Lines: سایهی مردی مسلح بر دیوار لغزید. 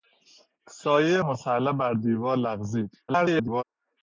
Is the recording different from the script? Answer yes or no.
yes